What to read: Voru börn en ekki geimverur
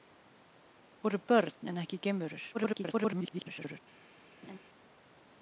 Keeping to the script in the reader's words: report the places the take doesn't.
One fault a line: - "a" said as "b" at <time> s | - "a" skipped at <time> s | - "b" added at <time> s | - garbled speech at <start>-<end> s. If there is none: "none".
- garbled speech at 2.5-3.8 s